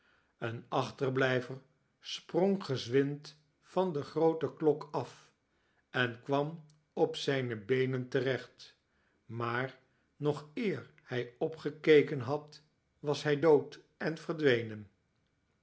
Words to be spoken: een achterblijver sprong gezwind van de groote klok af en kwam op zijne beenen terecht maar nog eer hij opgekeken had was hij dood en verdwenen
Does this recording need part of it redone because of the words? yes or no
no